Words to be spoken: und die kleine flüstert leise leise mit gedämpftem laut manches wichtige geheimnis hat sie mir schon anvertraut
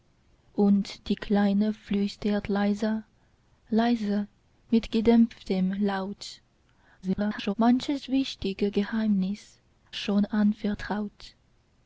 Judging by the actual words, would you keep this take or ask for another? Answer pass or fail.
fail